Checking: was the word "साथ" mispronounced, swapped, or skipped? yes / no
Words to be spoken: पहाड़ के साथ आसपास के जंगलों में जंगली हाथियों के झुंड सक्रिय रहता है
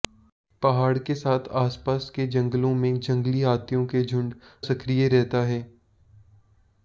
no